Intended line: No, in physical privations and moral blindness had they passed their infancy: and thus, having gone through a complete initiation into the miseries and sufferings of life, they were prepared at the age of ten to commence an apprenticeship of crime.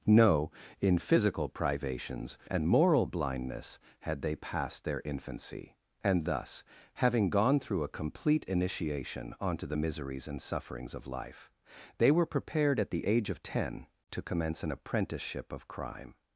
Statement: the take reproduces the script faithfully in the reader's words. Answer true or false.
false